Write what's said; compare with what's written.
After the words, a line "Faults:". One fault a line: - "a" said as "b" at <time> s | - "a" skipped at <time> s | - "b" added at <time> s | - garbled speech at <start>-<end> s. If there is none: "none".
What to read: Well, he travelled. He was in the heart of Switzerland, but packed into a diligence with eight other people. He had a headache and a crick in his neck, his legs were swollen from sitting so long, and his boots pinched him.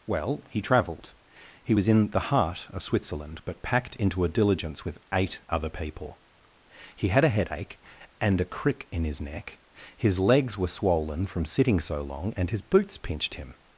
Well, he travelled. He was in the heart of Switzerland, but packed into a diligence with eight other people. He had a headache and a crick in his neck, his legs were swollen from sitting so long, and his boots pinched him.
Faults:
none